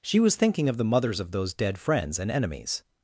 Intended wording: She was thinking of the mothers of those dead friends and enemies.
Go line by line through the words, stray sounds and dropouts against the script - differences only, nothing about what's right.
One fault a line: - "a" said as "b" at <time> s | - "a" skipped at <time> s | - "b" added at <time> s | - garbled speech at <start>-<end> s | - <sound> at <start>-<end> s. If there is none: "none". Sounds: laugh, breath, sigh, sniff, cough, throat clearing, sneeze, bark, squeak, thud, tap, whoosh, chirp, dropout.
none